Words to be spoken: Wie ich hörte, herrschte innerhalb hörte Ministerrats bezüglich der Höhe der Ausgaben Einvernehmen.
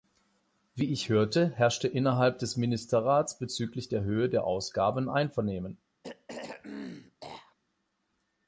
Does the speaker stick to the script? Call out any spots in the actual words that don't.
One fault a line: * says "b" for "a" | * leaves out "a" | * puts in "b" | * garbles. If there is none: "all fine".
* says "des" for "hörte"